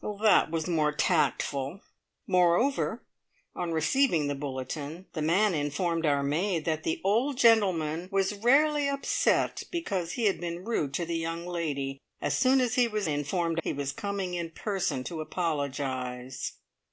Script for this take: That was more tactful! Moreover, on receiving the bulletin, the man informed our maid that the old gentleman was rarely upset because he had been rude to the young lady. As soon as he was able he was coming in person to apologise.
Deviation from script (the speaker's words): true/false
true